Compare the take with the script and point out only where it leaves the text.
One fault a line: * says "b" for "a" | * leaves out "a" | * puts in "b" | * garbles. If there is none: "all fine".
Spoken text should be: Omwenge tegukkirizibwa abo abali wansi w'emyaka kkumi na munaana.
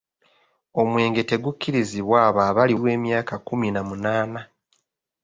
* leaves out "wansi"